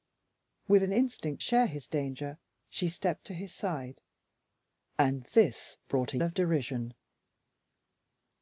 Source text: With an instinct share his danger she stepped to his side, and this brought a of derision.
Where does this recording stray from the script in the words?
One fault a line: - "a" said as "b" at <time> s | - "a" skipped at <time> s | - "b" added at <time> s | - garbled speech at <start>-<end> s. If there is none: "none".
none